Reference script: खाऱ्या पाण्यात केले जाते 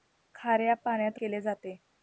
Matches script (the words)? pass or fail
pass